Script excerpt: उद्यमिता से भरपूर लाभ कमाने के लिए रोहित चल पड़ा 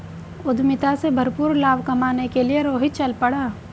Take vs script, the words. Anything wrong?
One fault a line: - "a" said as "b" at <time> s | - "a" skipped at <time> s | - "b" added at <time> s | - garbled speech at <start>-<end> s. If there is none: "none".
none